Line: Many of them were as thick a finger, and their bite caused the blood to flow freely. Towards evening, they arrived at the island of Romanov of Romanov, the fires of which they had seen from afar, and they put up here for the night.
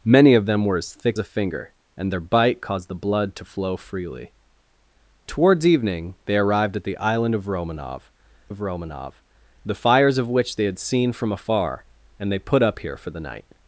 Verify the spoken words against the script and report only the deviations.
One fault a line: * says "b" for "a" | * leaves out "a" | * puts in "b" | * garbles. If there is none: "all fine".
all fine